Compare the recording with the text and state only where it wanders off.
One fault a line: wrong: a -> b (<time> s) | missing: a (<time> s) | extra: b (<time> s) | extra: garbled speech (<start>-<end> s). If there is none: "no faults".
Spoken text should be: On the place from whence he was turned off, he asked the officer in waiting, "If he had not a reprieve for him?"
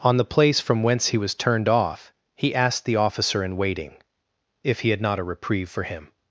no faults